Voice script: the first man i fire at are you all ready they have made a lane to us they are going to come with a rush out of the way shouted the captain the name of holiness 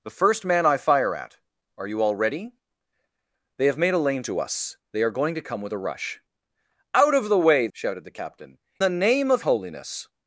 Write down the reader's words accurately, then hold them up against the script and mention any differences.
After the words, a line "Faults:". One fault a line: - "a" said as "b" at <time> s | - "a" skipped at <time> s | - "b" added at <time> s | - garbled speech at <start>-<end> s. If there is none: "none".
the first man i fire at are you all ready they have made a lane to us they are going to come with a rush out of the way shouted the captain the name of holiness
Faults:
none